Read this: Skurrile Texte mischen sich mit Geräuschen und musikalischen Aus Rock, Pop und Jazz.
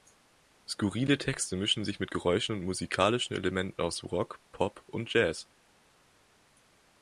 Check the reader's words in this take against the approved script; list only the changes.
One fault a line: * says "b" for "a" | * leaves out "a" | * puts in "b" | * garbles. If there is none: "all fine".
* puts in "Elementen"